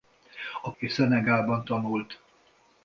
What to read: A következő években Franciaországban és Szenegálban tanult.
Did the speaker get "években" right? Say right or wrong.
wrong